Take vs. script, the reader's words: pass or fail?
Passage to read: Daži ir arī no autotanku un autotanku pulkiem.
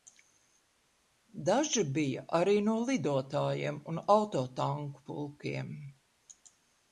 fail